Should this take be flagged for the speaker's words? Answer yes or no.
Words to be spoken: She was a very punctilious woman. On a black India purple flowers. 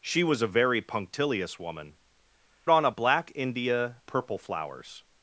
no